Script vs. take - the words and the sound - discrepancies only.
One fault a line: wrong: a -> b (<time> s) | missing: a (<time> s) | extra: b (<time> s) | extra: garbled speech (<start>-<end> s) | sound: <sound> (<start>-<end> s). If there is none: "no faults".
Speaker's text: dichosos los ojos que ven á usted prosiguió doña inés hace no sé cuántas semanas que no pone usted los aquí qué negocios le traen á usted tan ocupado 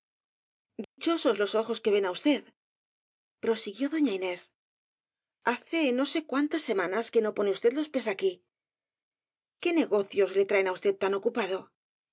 sound: dropout (0.8-1.0 s)
extra: pies (7.9 s)